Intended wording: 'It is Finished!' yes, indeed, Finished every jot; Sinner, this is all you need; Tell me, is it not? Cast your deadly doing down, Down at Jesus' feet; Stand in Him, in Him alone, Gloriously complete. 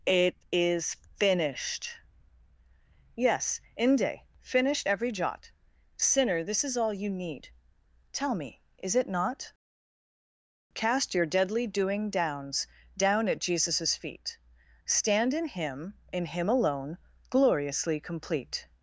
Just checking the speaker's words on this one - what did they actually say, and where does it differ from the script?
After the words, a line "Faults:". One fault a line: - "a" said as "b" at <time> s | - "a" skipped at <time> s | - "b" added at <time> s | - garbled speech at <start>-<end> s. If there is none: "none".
'It is Finished!' yes, inde, Finished every jot; Sinner, this is all you need; Tell me, is it not? Cast your deadly doing downs, Down at Jesus' feet; Stand in Him, in Him alone, Gloriously complete.
Faults:
- "indeed" said as "inde" at 3.8 s
- "down" said as "downs" at 12.1 s